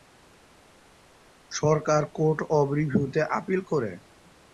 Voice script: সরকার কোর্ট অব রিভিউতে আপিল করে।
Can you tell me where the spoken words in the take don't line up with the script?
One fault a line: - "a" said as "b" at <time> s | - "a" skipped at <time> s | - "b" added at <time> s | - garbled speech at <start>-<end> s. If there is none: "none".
none